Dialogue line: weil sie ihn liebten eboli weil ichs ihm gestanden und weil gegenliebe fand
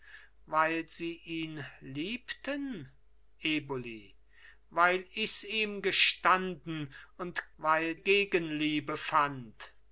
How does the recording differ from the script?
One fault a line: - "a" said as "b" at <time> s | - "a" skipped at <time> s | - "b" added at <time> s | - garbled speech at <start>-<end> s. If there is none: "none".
none